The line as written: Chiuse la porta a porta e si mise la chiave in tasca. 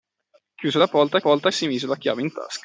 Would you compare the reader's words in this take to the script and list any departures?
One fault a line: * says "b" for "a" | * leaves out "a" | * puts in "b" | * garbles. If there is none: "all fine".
all fine